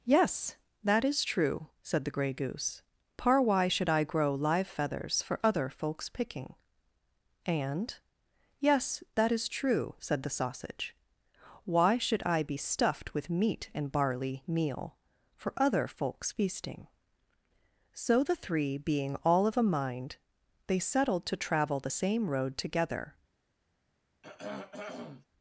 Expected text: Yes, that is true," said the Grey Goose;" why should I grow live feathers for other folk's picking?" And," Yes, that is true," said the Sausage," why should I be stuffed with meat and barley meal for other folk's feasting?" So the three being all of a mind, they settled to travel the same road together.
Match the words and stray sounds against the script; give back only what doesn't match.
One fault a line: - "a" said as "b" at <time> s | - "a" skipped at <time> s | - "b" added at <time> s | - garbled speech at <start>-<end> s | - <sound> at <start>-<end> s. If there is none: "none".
- "par" added at 3.2 s
- throat clearing at 24.2-25.3 s